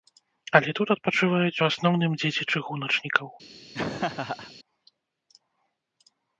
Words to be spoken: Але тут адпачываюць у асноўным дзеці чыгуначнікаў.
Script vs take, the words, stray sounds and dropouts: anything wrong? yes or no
yes